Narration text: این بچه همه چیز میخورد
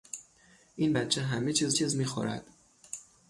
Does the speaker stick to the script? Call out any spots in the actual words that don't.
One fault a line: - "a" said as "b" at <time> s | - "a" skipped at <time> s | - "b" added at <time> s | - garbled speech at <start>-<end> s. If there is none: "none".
- "چیز" added at 1.7 s